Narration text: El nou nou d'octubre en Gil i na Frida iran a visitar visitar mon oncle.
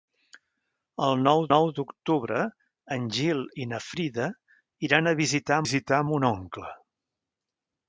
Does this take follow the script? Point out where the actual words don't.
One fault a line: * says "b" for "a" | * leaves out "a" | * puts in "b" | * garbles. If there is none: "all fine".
all fine